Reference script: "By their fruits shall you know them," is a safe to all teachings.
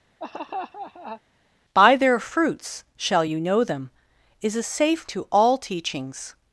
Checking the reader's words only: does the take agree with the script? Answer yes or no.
yes